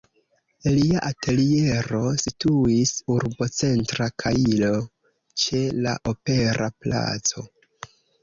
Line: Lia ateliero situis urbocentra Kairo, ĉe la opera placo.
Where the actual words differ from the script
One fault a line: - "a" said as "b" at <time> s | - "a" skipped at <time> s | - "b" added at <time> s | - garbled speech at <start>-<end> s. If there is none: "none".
none